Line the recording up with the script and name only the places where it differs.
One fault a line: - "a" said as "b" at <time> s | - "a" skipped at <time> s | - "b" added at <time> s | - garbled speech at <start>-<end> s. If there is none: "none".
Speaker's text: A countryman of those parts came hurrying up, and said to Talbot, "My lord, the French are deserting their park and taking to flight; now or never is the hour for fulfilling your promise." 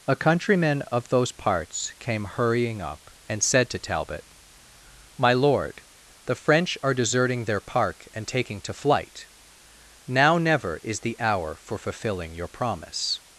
- "or" skipped at 10.4 s